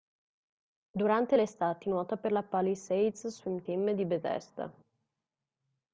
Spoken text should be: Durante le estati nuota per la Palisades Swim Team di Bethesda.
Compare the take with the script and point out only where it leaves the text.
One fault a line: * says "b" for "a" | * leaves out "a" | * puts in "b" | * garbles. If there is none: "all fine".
all fine